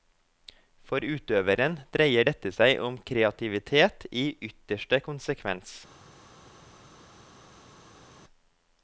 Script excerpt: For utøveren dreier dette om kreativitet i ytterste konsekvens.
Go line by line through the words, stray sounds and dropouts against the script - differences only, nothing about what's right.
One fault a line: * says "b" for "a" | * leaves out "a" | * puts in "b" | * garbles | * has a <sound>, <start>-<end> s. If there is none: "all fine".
* puts in "seg"